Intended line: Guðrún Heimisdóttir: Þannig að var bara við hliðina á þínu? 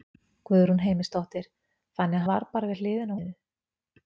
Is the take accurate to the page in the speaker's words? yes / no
yes